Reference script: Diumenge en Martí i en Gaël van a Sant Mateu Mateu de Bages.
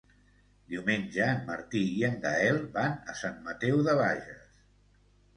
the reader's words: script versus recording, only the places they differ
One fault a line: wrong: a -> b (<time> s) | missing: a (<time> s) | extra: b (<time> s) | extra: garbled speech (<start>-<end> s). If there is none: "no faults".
missing: Mateu (3.8 s)